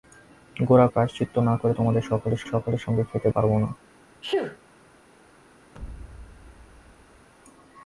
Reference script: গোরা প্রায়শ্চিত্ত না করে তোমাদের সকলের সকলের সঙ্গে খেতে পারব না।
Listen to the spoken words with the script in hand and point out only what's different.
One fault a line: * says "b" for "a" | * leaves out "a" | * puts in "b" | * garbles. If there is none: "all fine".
all fine